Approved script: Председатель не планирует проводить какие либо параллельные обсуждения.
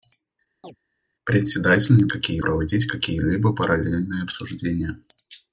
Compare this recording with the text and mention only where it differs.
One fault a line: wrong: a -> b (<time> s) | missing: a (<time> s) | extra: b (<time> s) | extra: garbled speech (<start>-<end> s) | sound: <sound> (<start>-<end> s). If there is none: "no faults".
sound: chirp (0.6-0.8 s)
wrong: планирует -> какие (2.1 s)